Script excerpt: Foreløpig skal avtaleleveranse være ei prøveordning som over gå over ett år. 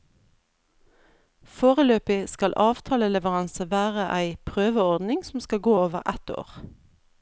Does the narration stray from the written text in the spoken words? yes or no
yes